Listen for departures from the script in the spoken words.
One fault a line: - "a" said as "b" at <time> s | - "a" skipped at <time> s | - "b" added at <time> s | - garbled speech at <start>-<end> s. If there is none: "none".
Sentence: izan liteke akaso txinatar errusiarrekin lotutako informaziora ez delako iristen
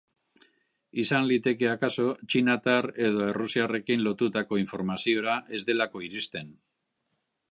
- "edo" added at 3.1 s